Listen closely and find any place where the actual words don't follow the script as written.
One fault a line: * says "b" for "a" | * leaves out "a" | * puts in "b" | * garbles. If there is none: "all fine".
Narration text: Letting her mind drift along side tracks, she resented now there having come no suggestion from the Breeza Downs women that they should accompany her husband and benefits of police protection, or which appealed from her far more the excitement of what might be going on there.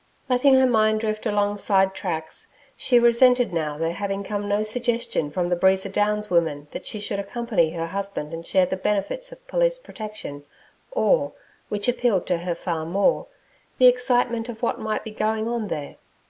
* says "she" for "they"
* puts in "share the"
* says "to" for "from"